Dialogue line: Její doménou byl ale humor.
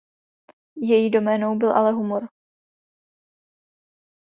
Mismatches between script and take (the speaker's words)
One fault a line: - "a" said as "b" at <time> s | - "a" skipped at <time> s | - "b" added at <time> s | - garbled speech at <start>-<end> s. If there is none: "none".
none